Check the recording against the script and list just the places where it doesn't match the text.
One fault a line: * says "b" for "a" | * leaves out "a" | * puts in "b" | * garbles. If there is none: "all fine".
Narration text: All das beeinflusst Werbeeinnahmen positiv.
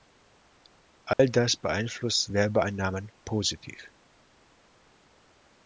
all fine